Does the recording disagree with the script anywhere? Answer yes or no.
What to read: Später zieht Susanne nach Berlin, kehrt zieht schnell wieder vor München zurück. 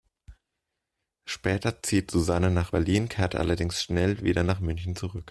yes